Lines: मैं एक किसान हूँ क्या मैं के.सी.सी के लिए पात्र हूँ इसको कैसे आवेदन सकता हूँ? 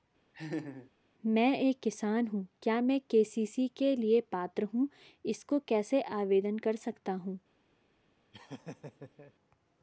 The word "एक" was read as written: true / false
true